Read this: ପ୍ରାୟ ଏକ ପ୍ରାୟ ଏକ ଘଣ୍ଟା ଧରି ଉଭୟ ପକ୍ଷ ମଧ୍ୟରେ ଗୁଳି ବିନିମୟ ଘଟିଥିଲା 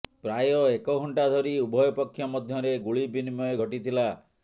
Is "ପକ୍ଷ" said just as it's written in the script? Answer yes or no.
yes